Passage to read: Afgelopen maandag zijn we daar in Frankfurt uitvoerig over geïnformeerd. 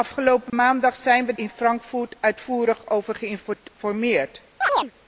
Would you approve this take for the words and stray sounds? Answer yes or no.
no